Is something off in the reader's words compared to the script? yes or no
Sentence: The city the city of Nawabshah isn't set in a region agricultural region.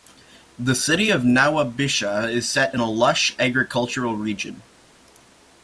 yes